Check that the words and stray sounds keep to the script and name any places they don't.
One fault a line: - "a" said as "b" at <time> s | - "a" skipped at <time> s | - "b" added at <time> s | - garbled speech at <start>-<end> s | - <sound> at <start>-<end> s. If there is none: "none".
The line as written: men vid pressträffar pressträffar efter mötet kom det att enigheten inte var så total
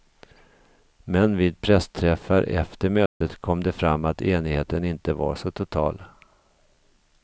- "pressträffar" skipped at 2.4 s
- dropout at 3.1-3.2 s
- "fram" added at 3.7 s